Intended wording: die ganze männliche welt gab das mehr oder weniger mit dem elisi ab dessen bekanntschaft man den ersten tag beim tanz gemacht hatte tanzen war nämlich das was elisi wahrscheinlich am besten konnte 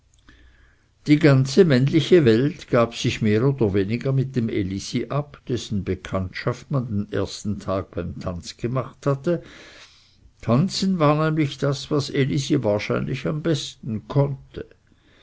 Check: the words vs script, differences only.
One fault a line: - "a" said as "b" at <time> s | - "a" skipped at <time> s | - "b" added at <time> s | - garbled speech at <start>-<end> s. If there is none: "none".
- "das" said as "sich" at 2.9 s